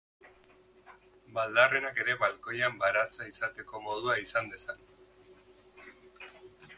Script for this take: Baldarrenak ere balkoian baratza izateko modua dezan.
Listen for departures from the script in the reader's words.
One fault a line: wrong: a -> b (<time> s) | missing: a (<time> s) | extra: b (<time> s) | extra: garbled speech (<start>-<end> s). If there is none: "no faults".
extra: izan (4.3 s)